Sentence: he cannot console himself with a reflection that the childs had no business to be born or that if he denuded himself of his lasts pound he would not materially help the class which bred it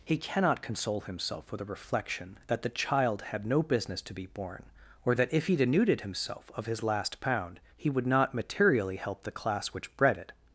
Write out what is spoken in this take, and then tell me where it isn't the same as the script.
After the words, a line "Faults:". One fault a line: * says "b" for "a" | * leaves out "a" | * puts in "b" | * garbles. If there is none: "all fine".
he cannot console himself with a reflection that the child had no business to be born or that if he denuded himself of his last pound he would not materially help the class which bred it
Faults:
* says "child" for "childs"
* says "last" for "lasts"